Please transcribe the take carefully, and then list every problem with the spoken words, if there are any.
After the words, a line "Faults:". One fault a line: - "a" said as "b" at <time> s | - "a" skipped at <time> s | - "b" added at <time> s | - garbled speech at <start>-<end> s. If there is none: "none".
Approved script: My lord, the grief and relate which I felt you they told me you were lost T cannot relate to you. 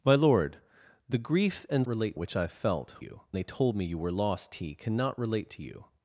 My lord, the grief and relate which I felt you they told me you were lost T cannot relate to you.
Faults:
none